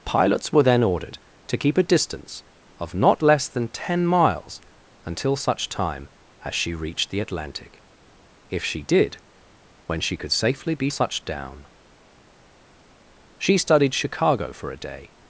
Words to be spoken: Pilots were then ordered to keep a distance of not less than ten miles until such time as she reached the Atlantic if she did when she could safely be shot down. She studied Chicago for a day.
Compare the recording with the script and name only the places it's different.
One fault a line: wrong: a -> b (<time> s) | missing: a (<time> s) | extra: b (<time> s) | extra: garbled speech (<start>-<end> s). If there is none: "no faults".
wrong: shot -> such (10.9 s)